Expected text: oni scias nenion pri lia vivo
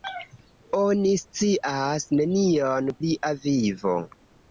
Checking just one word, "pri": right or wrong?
wrong